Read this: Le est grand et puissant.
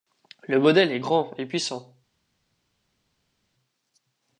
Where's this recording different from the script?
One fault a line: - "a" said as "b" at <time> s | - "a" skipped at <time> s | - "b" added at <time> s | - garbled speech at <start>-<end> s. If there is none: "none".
- "modèle" added at 0.6 s